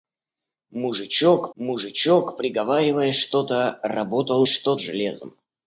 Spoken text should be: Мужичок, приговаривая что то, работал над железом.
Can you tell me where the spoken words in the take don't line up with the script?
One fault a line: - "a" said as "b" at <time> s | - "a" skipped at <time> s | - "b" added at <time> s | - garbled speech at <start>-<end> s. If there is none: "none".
- "мужичок" added at 1.6 s
- "над" said as "что" at 4.4 s